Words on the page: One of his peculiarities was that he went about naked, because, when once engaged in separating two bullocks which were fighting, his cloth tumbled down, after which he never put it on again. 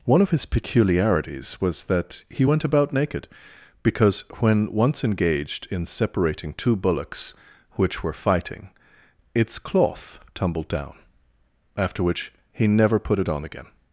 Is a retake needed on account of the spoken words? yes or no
yes